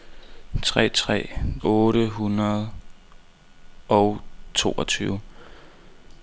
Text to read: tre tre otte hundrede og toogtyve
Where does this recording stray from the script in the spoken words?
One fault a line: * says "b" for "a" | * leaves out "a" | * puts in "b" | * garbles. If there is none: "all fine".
all fine